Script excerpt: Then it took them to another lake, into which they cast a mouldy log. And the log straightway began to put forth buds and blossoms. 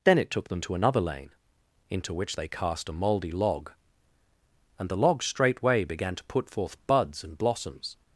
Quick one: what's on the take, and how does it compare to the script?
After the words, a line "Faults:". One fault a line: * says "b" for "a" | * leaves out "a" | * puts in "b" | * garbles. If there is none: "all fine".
Then it took them to another lane, into which they cast a mouldy log. And the log straightway began to put forth buds and blossoms.
Faults:
* says "lane" for "lake"